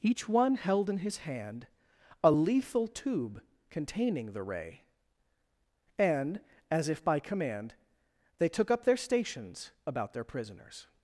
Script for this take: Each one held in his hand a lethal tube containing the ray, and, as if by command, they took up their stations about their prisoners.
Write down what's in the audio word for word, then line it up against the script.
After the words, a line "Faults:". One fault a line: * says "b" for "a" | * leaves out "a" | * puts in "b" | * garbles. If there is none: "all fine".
Each one held in his hand a lethal tube containing the ray, and, as if by command, they took up their stations about their prisoners.
Faults:
all fine